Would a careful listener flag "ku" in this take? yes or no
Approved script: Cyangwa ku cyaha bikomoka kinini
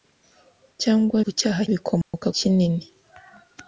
no